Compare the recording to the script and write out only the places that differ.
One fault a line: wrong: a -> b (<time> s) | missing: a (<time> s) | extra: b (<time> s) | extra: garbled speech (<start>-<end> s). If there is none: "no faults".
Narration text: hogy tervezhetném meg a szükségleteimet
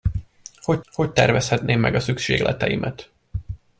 extra: hogy (0.9 s)